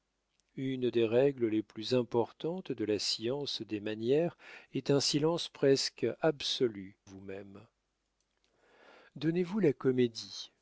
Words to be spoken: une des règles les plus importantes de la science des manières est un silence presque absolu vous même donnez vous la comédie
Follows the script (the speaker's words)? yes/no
yes